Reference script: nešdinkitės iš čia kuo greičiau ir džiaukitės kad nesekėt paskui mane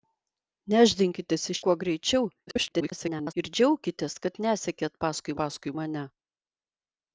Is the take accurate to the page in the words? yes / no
no